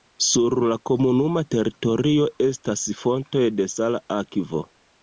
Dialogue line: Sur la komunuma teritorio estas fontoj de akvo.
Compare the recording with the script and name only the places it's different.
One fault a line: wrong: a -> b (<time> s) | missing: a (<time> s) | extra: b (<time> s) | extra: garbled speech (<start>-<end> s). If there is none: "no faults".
extra: sala (3.7 s)